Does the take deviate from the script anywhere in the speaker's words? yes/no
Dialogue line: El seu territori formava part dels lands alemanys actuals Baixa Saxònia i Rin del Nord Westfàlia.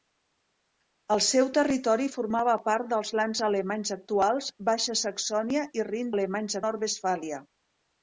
yes